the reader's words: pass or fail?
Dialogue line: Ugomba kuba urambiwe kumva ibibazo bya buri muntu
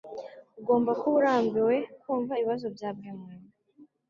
pass